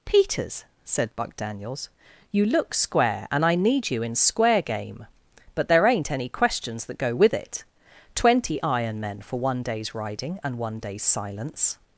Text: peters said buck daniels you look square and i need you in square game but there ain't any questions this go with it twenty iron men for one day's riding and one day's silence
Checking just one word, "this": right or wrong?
wrong